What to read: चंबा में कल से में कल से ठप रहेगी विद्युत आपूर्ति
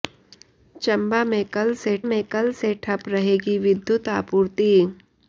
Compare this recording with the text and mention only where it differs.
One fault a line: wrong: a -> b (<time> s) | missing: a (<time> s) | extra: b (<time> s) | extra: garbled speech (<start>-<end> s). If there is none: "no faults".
no faults